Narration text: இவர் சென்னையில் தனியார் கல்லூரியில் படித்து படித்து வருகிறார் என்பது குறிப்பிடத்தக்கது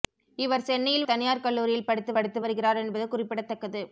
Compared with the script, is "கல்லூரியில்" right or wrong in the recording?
right